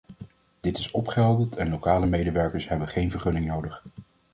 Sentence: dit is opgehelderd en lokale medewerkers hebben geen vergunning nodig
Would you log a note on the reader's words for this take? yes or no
no